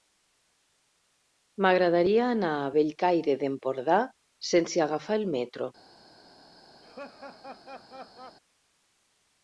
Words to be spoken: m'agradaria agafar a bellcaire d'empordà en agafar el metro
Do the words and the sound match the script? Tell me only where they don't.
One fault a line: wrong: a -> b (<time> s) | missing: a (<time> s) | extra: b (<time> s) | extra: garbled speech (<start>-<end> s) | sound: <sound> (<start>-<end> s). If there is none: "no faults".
wrong: agafar -> anar (2.4 s)
wrong: en -> sense (4.5 s)
sound: laugh (6.8-8.4 s)